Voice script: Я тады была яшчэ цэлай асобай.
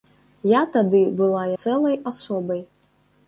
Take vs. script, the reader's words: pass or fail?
fail